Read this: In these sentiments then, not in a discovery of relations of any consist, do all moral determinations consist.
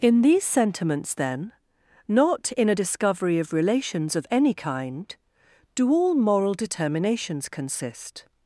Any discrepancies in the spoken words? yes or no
yes